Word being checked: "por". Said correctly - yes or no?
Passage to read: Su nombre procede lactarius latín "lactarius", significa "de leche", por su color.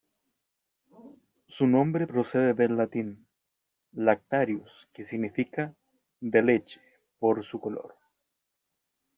yes